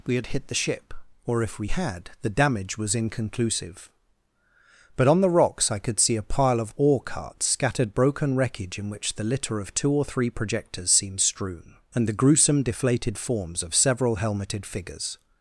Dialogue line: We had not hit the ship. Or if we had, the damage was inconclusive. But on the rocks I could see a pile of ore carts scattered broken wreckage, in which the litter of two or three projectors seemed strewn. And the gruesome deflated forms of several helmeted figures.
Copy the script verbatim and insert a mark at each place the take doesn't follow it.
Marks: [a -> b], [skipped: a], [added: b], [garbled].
We had [skipped: not] hit the ship. Or if we had, the damage was inconclusive. But on the rocks I could see a pile of ore carts scattered broken wreckage, in which the litter of two or three projectors seemed strewn. And the gruesome deflated forms of several helmeted figures.